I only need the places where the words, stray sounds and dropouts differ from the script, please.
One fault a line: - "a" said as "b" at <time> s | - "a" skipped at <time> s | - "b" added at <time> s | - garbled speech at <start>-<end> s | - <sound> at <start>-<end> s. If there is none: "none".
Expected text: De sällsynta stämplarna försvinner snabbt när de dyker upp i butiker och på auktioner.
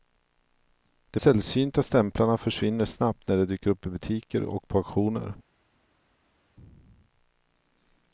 none